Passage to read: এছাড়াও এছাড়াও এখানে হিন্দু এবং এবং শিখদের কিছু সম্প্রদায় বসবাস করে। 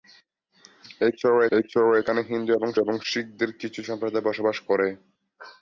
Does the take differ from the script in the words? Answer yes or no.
no